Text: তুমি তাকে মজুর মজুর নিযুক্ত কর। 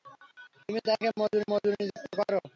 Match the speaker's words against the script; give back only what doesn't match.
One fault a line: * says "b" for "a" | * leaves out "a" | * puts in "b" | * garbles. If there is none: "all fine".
all fine